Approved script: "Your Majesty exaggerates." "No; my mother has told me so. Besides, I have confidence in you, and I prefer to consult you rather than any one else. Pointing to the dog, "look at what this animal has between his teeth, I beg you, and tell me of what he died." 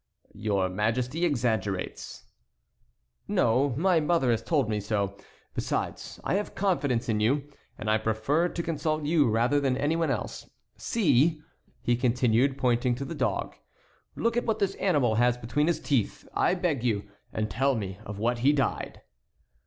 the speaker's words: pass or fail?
fail